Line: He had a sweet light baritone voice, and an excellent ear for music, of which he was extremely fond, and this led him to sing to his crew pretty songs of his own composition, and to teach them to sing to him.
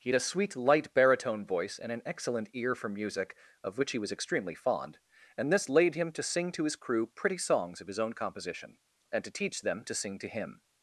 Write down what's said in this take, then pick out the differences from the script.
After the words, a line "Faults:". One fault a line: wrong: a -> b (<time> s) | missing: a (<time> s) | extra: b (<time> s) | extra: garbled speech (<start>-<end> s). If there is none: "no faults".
He had a sweet light baritone voice, and an excellent ear for music, of which he was extremely fond, and this laid him to sing to his crew pretty songs of his own composition, and to teach them to sing to him.
Faults:
wrong: led -> laid (5.7 s)